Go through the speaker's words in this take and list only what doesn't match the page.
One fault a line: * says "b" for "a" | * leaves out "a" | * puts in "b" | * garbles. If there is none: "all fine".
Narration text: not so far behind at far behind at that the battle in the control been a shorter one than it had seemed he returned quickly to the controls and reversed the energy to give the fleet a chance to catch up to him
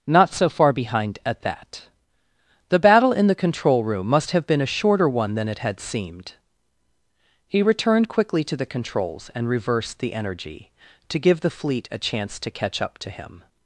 * leaves out "far behind at"
* puts in "room must have"